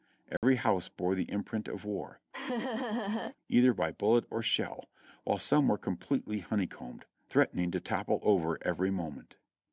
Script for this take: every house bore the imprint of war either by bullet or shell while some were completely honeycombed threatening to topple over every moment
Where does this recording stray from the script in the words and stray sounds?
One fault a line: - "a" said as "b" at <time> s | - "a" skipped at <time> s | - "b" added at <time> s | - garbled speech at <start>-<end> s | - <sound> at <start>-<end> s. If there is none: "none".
- dropout at 0.4-0.4 s
- laugh at 2.3-3.4 s